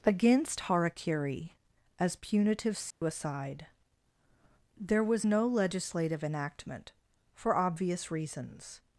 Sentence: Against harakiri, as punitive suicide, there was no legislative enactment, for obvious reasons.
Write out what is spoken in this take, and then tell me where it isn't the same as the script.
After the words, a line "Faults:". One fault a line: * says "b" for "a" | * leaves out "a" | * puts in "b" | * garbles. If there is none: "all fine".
Against harakiri, as punitive suicide, there was no legislative enactment, for obvious reasons.
Faults:
all fine